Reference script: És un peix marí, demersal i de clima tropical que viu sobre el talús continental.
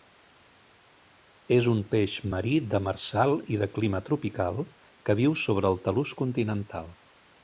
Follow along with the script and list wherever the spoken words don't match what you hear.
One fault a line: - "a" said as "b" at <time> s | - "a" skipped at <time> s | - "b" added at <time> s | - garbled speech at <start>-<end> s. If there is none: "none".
none